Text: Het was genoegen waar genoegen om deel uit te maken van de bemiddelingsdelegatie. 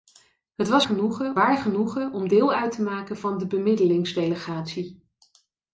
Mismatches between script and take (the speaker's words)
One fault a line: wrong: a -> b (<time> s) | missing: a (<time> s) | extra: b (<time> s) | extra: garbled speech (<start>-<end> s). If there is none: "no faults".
no faults